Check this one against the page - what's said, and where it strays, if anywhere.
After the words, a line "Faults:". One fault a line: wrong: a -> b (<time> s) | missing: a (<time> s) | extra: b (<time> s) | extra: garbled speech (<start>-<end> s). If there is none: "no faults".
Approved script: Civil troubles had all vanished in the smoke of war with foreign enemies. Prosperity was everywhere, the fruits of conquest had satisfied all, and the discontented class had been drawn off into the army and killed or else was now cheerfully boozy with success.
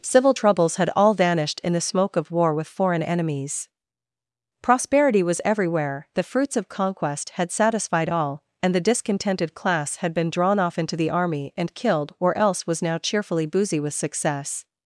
Civil troubles had all vanished in the smoke of war with foreign enemies. Prosperity was everywhere, the fruits of conquest had satisfied all, and the discontented class had been drawn off into the army and killed or else was now cheerfully boozy with success.
Faults:
no faults